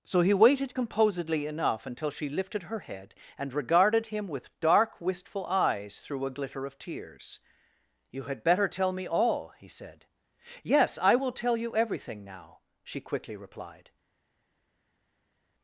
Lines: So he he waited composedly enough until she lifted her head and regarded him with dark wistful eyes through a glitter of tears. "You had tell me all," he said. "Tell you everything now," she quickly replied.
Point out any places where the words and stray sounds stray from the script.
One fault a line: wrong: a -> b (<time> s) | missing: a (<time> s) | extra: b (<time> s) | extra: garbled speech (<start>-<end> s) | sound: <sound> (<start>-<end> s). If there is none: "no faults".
missing: he (0.3 s)
extra: better (8.4 s)
extra: Yes I will (10.6 s)